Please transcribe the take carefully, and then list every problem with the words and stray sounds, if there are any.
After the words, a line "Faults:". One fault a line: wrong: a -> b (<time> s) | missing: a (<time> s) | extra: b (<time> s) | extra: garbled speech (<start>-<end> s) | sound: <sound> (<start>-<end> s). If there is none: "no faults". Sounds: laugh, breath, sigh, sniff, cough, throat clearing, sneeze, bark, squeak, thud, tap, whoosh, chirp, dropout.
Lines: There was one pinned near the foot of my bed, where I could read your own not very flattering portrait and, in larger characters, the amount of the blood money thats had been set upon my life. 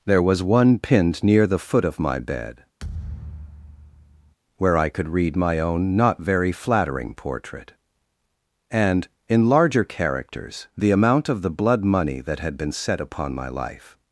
There was one pinned near the foot of my bed, where I could read my own not very flattering portrait and, in larger characters, the amount of the blood money that had been set upon my life.
Faults:
sound: thud (2.8-4.3 s)
wrong: your -> my (5.4 s)
wrong: thats -> that (12.2 s)